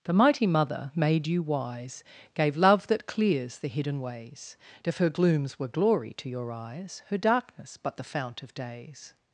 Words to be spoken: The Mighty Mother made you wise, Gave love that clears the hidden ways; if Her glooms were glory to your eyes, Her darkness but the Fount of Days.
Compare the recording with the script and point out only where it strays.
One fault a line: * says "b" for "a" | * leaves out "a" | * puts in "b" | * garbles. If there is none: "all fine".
all fine